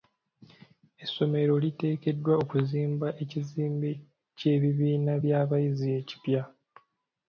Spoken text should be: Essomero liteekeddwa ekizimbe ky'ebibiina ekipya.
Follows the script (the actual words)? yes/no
no